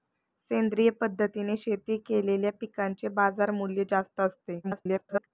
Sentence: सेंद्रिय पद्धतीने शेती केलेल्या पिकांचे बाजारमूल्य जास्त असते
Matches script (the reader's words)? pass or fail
fail